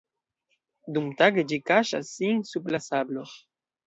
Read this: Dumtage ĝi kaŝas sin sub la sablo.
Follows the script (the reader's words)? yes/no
yes